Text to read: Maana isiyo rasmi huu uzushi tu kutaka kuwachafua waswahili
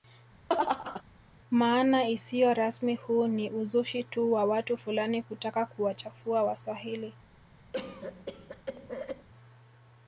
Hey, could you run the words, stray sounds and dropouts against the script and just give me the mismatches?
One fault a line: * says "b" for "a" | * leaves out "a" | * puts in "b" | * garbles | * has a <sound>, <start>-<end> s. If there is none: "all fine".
* has a laugh, 0.5-1.0 s
* puts in "ni"
* puts in "wa watu fulani"
* has a cough, 7.7-9.3 s